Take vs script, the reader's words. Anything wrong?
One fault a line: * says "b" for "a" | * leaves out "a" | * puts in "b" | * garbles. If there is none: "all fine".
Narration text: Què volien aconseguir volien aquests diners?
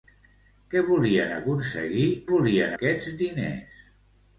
all fine